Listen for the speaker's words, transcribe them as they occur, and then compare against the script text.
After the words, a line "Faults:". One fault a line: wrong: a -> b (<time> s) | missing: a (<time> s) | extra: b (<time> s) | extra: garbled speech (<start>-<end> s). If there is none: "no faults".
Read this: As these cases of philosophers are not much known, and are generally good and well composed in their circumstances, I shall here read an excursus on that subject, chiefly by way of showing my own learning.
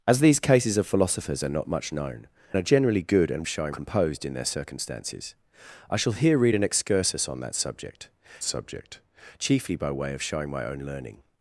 As these cases of philosophers are not much known, are generally good and showing composed in their circumstances, I shall here read an excursus on that subject subject, chiefly by way of showing my own learning.
Faults:
missing: and (2.3 s)
wrong: well -> showing (3.5 s)
extra: subject (8.4 s)